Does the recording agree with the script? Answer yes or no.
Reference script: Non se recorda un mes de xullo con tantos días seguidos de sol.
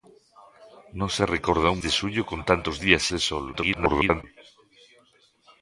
no